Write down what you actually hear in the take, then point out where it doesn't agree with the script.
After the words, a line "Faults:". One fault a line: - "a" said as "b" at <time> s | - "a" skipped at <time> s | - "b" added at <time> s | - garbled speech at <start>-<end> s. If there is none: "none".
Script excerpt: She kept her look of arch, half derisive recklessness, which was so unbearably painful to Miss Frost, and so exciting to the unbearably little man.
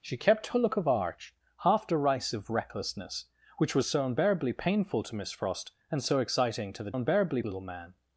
She kept her look of arch, half derisive recklessness, which was so unbearably painful to Miss Frost, and so exciting to the unbearably little man.
Faults:
none